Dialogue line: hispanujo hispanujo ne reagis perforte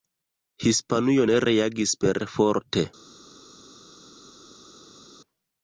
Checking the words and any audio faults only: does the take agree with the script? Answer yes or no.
no